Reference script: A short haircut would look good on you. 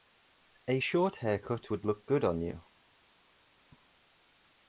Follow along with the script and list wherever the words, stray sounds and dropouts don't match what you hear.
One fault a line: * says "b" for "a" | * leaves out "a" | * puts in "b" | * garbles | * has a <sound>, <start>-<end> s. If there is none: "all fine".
all fine